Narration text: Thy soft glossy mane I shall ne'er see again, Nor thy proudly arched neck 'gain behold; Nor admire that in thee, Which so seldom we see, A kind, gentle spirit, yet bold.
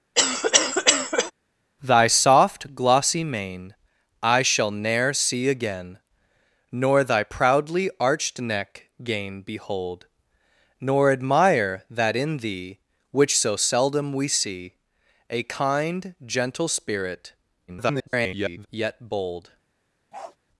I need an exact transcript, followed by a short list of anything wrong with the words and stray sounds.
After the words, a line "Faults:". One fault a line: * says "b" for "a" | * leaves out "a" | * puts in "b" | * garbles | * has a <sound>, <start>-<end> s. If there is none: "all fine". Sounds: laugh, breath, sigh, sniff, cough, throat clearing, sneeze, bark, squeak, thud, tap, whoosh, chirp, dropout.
Thy soft glossy mane I shall ne'er see again, Nor thy proudly arched neck 'gain behold; Nor admire that in thee, Which so seldom we see, A kind, gentle spirit, [garbled] yet bold.
Faults:
* has a cough, 0.1-1.3 s
* garbles
* has a bark, 20.1-20.4 s